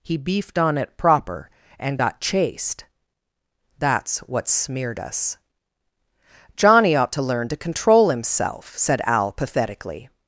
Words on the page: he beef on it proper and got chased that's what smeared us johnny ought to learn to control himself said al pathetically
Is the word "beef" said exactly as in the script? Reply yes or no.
no